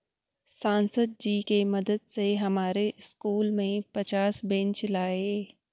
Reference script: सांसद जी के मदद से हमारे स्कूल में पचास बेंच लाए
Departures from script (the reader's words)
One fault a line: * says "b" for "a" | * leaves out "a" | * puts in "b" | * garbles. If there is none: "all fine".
all fine